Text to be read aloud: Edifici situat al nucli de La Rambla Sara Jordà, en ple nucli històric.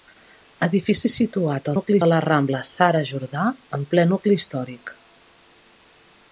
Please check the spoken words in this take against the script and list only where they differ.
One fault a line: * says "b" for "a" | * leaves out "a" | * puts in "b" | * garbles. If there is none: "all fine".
all fine